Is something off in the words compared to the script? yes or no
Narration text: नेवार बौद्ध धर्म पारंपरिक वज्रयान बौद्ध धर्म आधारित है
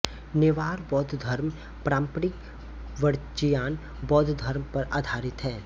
yes